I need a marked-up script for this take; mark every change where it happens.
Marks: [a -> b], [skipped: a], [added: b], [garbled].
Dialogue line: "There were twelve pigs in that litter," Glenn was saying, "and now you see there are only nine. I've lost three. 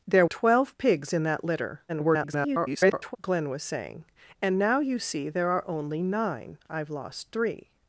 "There [skipped: were] twelve pigs in that litter," [garbled] Glenn was saying, "and now you see there are only nine. I've lost three.